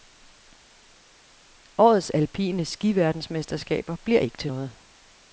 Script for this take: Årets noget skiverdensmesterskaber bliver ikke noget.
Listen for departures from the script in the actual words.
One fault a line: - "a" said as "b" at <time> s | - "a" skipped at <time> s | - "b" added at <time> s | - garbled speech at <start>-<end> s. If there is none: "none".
- "noget" said as "alpine" at 2.1 s
- "til" added at 4.4 s